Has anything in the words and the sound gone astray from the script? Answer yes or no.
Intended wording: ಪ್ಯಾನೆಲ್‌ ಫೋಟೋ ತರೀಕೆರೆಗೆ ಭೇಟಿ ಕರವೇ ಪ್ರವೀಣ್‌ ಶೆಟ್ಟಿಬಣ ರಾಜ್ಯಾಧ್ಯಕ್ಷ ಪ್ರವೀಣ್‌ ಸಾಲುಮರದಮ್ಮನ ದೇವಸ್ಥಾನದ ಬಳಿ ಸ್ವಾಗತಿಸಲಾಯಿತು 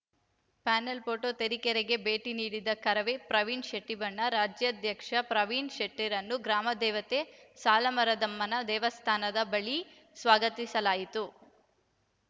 yes